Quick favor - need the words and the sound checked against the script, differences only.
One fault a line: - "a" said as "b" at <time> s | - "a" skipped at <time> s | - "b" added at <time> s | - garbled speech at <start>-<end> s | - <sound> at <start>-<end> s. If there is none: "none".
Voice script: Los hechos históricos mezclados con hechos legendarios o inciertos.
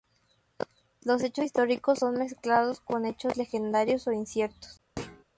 - "son" added at 2.0 s
- thud at 5.0-5.2 s